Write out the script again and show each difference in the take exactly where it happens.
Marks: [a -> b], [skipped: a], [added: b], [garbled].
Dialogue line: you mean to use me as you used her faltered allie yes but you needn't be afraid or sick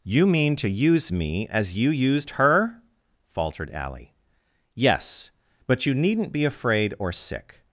you mean to use me as you used her faltered allie yes but you needn't be afraid or sick